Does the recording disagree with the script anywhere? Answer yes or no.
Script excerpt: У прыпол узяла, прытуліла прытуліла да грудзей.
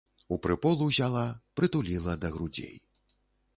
yes